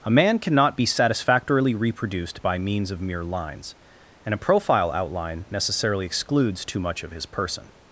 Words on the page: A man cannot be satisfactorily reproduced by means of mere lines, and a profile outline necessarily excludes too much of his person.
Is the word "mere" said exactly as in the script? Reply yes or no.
yes